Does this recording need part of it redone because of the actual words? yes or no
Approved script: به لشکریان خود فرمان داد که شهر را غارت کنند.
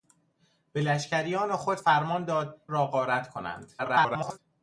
yes